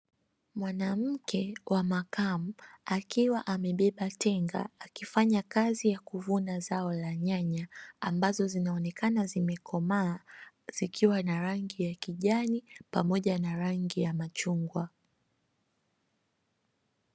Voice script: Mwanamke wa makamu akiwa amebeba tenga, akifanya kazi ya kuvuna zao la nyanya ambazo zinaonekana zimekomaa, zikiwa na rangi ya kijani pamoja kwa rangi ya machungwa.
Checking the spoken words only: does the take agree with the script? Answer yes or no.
no